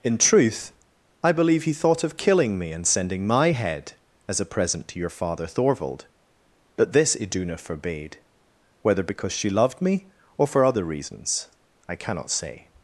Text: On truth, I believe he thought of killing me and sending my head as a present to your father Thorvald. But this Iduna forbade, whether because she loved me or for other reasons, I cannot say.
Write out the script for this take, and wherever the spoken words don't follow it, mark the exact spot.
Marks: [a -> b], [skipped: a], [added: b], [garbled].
[On -> In] truth, I believe he thought of killing me and sending my head as a present to your father Thorvald. But this Iduna forbade, whether because she loved me or for other reasons, I cannot say.